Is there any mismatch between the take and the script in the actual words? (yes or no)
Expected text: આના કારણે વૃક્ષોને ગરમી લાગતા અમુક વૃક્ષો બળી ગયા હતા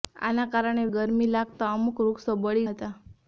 yes